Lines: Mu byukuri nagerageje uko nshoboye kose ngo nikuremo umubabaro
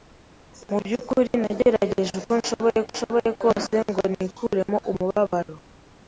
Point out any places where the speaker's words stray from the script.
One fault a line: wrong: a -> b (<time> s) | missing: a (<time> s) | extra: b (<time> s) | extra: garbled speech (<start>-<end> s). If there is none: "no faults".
extra: nshoboye (2.9 s)